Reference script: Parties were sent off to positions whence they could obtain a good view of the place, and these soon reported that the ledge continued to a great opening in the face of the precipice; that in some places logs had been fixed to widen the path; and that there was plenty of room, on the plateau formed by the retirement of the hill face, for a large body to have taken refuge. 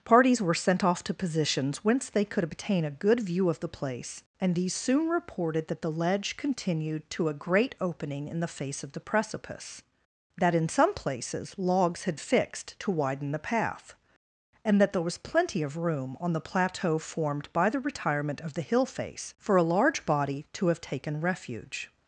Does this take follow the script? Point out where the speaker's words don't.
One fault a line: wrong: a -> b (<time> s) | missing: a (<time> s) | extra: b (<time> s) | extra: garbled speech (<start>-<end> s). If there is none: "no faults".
missing: been (12.2 s)